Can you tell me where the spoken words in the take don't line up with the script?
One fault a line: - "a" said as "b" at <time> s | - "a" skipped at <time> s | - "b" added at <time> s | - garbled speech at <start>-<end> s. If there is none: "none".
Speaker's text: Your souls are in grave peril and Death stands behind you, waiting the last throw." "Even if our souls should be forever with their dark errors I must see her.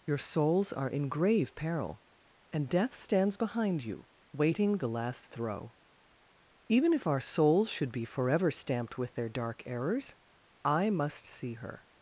- "stamped" added at 8.5 s